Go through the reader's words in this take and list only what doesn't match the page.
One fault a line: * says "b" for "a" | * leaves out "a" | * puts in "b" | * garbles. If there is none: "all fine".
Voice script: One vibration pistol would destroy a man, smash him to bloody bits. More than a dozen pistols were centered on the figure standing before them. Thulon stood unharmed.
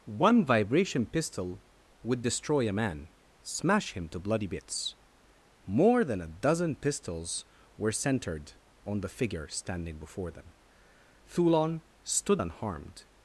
all fine